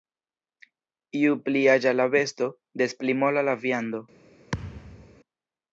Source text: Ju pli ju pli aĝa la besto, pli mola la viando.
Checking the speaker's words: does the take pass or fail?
fail